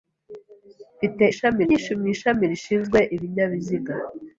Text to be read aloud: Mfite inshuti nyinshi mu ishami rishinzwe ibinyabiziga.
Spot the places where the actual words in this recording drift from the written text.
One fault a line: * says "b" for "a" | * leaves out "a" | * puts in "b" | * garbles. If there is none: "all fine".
* says "ishami" for "inshuti"